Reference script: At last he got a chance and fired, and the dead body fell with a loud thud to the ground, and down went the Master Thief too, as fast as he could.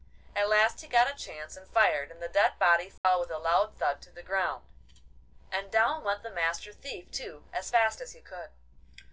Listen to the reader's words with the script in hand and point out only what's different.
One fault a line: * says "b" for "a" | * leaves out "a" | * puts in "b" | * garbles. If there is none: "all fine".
all fine